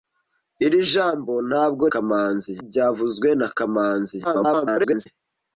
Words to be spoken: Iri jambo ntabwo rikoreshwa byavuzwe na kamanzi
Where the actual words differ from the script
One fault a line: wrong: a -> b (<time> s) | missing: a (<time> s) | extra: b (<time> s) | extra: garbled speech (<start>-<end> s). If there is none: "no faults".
wrong: rikoreshwa -> kamanzi (1.9 s)
extra: garbled speech (4.2-5.1 s)